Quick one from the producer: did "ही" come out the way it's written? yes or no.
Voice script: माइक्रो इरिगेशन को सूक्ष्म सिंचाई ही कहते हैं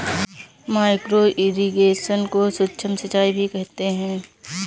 no